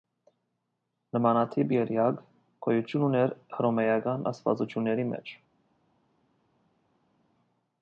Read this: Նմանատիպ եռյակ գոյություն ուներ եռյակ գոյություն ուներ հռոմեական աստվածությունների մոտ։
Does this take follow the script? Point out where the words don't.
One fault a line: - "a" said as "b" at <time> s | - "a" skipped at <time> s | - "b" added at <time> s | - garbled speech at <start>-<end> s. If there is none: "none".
- "եռյակ գոյություն ուներ" skipped at 3.3 s
- "մոտ" said as "մեջ" at 5.1 s